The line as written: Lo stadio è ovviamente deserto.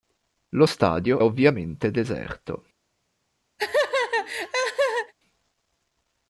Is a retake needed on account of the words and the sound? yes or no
yes